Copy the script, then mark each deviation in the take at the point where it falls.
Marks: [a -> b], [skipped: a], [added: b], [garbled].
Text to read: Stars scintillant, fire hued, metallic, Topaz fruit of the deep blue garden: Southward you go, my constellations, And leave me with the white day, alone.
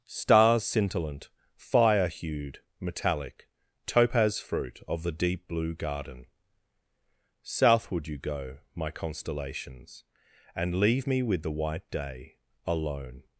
Stars scintillant, fire hued, metallic, Topaz fruit of the deep blue garden: Southward you go, my constellations, And leave me with the white day, alone.